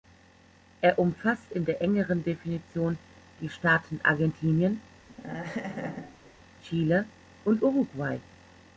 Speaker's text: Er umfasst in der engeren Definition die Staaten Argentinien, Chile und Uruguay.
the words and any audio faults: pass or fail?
fail